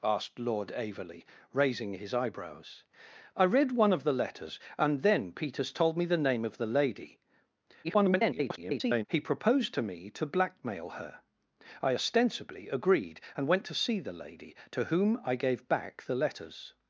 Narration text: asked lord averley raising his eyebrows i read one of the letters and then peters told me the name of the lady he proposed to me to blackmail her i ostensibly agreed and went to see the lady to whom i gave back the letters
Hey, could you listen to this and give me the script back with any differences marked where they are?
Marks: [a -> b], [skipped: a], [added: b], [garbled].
asked lord averley raising his eyebrows i read one of the letters and then peters told me the name of the lady [garbled] he proposed to me to blackmail her i ostensibly agreed and went to see the lady to whom i gave back the letters